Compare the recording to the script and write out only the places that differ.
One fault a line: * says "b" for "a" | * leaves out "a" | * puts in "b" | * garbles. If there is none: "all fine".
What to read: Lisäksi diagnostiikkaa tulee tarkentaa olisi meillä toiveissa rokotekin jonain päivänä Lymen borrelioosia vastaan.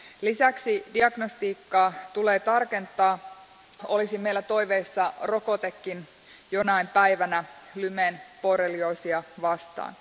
all fine